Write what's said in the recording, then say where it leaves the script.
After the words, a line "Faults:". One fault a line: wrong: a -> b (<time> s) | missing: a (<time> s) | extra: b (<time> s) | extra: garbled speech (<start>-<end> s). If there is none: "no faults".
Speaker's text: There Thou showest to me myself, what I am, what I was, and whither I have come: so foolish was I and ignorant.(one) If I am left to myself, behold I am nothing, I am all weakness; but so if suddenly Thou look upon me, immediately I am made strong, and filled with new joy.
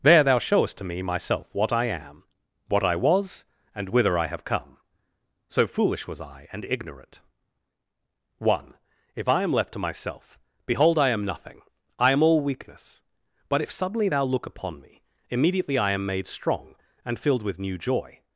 There Thou showest to me myself, what I am, what I was, and whither I have come: so foolish was I and ignorant.(one) If I am left to myself, behold I am nothing, I am all weakness; but if suddenly Thou look upon me, immediately I am made strong, and filled with new joy.
Faults:
missing: so (13.6 s)